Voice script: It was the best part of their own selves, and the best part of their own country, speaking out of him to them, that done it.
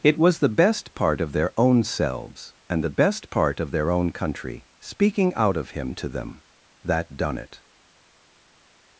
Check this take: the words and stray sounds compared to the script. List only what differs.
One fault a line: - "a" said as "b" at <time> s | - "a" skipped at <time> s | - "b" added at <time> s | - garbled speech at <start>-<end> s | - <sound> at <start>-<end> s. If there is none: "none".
none